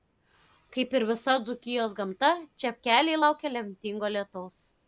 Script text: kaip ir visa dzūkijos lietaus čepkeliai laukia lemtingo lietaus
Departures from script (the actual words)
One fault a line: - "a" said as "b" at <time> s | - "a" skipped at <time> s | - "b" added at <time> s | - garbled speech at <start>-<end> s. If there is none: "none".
- "lietaus" said as "gamta" at 2.0 s